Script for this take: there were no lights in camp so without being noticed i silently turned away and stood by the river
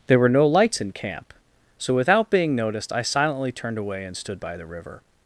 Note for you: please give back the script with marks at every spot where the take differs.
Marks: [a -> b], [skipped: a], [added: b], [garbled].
there were no lights in camp so without being noticed i silently turned away and stood by the river